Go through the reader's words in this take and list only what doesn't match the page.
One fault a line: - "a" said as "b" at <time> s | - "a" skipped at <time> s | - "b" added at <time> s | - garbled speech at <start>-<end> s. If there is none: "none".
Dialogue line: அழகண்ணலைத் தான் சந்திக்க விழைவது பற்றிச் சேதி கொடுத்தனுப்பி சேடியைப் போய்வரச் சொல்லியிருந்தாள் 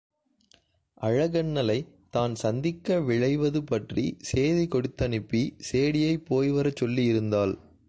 none